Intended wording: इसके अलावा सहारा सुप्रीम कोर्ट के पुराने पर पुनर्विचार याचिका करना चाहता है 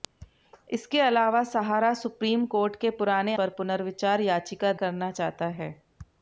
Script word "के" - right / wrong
right